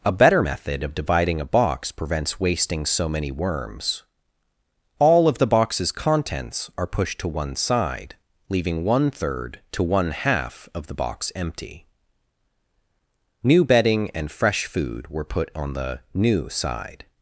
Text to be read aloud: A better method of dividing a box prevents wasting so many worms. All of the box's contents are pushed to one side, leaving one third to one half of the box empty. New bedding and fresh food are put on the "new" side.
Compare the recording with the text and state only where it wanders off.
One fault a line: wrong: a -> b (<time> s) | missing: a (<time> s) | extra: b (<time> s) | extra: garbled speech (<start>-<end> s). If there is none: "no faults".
wrong: are -> were (15.1 s)